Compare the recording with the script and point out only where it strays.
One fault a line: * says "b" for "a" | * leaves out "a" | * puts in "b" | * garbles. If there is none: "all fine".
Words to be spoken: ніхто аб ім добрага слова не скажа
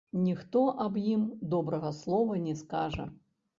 all fine